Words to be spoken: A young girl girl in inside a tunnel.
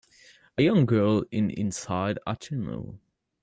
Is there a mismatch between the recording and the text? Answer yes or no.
yes